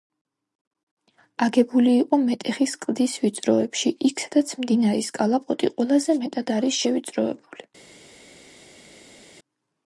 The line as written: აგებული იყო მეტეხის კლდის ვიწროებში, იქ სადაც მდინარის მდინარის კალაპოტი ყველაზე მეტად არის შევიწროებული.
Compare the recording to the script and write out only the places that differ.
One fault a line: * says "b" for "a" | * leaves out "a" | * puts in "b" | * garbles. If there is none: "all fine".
* leaves out "მდინარის"